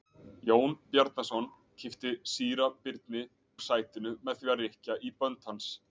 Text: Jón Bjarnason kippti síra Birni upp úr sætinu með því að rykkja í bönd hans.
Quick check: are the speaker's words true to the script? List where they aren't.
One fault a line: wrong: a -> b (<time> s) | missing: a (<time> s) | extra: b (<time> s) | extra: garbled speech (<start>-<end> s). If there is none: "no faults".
missing: upp (3.2 s)